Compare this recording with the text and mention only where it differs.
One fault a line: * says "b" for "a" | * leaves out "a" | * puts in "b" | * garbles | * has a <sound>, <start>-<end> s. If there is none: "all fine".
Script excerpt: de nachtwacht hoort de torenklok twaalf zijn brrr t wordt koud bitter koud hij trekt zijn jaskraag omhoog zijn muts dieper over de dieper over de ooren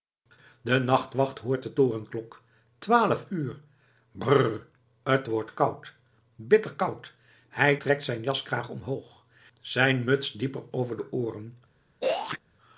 * says "uur" for "zijn"
* leaves out "dieper over de"
* has a throat clearing, 12.0-12.4 s